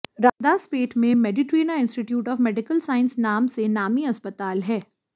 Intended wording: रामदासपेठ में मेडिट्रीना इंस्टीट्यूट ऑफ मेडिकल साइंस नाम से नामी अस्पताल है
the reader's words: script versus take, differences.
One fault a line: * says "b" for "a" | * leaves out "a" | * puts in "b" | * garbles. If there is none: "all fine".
all fine